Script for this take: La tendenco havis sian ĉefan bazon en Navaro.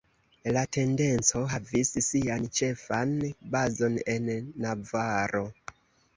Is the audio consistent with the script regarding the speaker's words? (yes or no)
yes